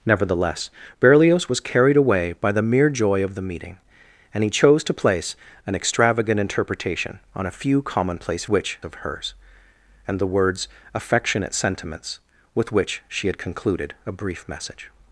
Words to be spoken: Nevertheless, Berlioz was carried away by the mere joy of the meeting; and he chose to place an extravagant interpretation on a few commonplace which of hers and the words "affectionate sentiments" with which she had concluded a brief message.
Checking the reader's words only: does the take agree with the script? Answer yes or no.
yes